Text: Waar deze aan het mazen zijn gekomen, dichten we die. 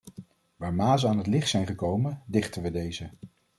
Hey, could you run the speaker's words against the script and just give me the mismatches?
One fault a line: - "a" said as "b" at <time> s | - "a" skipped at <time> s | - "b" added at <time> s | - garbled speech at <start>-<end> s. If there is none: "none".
- "deze" said as "mazen" at 0.7 s
- "mazen" said as "licht" at 1.3 s
- "die" said as "deze" at 2.7 s